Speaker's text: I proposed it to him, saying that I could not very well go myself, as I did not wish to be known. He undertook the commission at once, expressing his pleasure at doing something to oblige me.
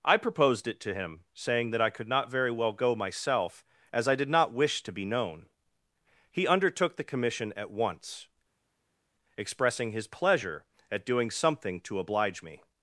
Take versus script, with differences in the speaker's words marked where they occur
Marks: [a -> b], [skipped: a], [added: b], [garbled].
I proposed it to him, saying that I could not very well go myself, as I did not wish to be known. He undertook the commission at once, expressing his pleasure at doing something to oblige me.